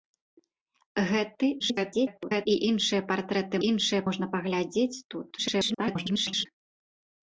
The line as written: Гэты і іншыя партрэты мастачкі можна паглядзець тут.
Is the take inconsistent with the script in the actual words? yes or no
yes